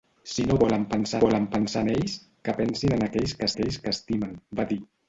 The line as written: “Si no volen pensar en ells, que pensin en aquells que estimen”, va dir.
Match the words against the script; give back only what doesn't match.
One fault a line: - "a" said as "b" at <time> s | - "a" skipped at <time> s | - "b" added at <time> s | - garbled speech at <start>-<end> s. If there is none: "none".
- "volen pensar" added at 1.2 s
- "aquells que" added at 3.5 s